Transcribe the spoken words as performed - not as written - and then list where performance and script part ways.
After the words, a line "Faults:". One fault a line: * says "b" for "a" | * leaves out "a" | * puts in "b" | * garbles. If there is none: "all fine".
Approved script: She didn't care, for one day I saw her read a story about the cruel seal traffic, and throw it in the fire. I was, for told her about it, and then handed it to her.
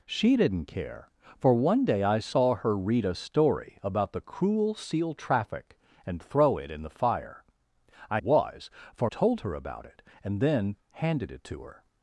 She didn't care, for one day I saw her read a story about the cruel seal traffic, and throw it in the fire. I was, for told her about it, and then handed it to her.
Faults:
all fine